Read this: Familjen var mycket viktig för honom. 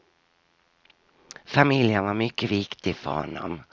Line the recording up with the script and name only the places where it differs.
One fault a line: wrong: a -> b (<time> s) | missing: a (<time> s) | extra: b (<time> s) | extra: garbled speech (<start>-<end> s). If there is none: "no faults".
no faults